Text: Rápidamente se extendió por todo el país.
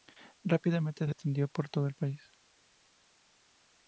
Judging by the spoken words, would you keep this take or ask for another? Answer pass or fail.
pass